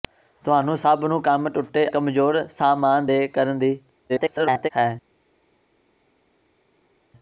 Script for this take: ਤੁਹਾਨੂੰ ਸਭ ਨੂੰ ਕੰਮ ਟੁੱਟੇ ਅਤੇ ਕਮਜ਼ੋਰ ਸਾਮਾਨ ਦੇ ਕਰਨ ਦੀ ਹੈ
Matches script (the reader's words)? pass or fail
fail